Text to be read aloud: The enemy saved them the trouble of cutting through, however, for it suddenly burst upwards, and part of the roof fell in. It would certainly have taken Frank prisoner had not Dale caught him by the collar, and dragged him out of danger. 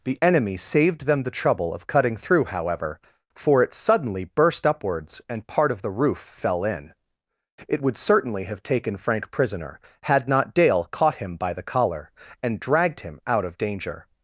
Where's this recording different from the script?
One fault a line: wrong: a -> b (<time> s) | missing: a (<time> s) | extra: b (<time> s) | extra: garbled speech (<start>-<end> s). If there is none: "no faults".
no faults